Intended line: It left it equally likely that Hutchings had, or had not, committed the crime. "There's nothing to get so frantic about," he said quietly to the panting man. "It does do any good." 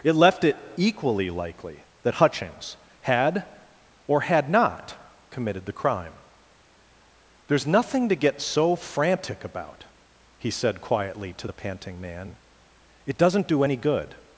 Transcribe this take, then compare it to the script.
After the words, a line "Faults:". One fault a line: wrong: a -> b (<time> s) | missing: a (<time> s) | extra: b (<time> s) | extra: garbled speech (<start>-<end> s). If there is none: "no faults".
It left it equally likely that Hutchings had, or had not, committed the crime. "There's nothing to get so frantic about," he said quietly to the panting man. "It doesn't do any good."
Faults:
wrong: does -> doesn't (13.2 s)